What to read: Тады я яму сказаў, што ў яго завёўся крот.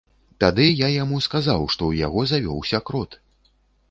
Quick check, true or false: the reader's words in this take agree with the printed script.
true